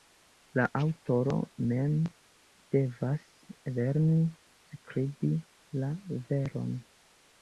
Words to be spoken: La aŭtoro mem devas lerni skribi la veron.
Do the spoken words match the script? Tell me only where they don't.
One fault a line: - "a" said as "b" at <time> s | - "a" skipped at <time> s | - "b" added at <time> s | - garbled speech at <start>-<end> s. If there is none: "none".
none